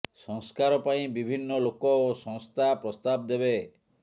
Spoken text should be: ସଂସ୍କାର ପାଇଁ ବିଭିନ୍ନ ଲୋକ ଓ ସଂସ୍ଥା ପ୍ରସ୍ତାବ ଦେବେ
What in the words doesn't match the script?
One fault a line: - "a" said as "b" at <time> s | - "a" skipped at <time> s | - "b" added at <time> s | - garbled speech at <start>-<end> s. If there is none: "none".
none